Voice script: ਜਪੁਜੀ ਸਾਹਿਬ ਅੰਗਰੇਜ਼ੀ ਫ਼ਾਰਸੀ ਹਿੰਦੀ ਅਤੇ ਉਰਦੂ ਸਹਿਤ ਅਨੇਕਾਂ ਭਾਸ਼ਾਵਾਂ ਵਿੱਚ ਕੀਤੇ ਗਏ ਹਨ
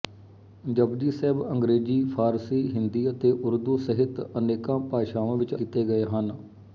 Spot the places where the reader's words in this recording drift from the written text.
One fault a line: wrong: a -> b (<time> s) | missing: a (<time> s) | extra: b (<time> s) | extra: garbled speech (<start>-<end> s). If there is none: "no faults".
no faults